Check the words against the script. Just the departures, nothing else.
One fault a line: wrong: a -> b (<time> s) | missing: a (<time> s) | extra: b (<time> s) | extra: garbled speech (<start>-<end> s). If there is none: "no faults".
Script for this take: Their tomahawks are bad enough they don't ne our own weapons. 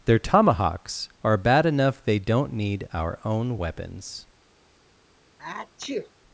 wrong: ne -> need (2.5 s)